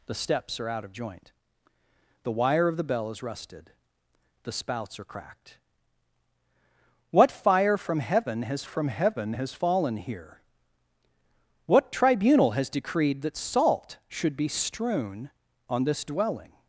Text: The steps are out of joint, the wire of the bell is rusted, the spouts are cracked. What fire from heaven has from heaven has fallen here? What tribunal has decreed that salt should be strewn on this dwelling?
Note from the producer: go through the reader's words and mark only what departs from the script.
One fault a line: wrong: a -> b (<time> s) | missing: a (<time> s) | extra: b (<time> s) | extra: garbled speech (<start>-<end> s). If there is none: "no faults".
no faults